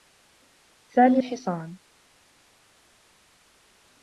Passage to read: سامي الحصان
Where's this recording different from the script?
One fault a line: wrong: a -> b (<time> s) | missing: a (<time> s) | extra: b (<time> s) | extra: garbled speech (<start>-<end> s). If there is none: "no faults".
no faults